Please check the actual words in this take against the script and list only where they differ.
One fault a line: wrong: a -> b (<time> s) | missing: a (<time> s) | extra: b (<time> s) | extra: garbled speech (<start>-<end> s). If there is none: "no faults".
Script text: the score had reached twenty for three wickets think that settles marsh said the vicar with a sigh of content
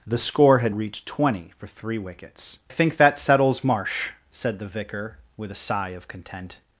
no faults